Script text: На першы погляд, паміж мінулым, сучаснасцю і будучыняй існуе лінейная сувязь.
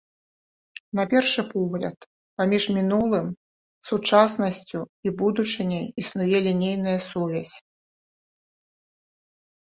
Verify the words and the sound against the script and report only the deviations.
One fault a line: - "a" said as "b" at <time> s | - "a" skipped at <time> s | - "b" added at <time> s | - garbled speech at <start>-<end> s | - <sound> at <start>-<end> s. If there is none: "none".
none